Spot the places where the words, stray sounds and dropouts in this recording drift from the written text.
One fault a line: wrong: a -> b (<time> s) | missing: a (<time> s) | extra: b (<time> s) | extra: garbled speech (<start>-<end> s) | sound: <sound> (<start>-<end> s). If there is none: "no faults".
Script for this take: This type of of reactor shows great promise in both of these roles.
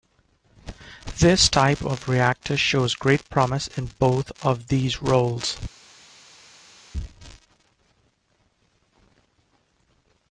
missing: of (2.1 s)